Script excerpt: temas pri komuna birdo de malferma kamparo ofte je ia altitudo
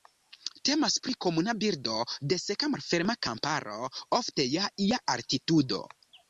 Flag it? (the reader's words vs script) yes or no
yes